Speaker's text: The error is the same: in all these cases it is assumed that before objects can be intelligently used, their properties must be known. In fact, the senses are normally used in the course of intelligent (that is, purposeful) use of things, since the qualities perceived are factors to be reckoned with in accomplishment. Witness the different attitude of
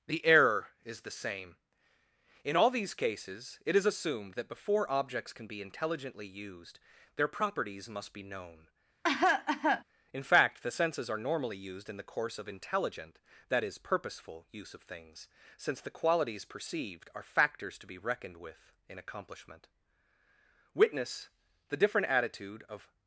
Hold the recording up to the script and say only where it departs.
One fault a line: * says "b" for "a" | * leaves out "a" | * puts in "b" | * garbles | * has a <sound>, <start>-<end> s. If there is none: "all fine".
* has a cough, 9.0-9.8 s